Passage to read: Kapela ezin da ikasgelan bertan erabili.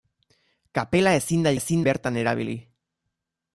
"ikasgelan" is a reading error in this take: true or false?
true